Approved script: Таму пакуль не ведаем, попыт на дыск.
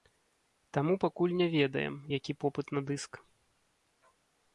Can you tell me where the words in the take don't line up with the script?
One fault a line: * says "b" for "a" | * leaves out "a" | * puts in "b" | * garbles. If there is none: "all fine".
* puts in "які"